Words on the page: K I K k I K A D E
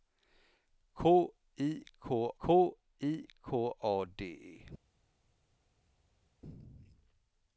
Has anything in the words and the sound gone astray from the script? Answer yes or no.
no